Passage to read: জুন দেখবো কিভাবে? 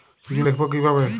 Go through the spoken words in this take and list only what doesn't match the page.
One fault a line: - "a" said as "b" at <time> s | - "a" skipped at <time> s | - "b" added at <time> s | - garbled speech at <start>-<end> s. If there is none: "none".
none